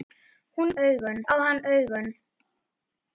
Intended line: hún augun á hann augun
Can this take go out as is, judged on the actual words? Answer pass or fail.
pass